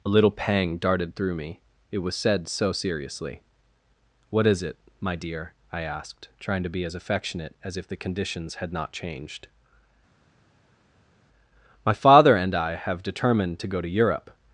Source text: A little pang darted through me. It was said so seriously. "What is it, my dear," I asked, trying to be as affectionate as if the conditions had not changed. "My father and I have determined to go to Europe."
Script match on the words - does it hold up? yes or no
yes